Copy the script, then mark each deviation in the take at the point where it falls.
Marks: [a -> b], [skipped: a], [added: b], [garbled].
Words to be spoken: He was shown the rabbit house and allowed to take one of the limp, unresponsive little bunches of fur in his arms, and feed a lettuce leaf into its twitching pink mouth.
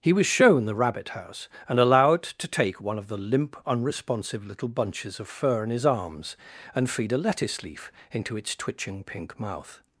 He was shown the rabbit house and allowed to take one of the limp, unresponsive little bunches of fur in his arms, and feed a lettuce leaf into its twitching pink mouth.